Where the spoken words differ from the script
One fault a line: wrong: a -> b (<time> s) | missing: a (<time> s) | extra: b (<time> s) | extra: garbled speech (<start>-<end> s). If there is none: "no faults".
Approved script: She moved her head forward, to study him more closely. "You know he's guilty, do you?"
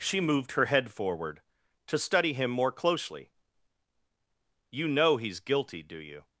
no faults